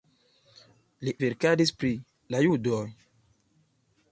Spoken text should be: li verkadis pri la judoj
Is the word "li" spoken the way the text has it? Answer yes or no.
yes